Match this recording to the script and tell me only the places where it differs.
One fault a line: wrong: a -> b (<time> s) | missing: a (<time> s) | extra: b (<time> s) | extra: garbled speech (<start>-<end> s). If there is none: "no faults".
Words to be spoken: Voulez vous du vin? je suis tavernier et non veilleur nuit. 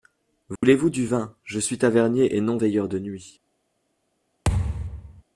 extra: de (2.9 s)